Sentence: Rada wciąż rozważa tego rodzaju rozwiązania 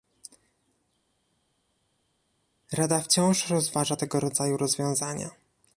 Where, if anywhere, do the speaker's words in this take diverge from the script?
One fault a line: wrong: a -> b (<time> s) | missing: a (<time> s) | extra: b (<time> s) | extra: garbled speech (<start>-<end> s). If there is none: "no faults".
no faults